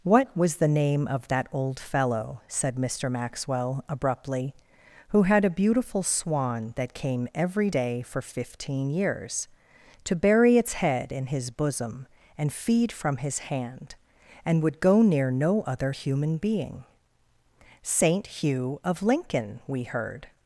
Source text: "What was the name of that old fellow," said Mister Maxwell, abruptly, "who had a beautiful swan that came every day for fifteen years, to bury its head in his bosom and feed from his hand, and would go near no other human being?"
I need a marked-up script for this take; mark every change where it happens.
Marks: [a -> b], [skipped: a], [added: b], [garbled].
"What was the name of that old fellow," said Mister Maxwell, abruptly, "who had a beautiful swan that came every day for fifteen years, to bury its head in his bosom and feed from his hand, and would go near no other human being?" [added: Saint Hugh of Lincoln We heard]